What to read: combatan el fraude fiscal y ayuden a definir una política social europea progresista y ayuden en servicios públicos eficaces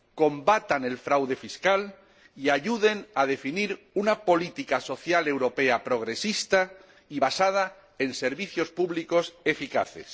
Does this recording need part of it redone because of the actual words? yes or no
yes